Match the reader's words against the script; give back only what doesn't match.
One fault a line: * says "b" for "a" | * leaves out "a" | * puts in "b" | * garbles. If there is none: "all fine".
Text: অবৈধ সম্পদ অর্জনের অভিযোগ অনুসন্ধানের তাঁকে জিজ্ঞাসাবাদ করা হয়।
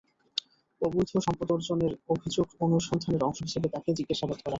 * puts in "অংশ হিসেবে"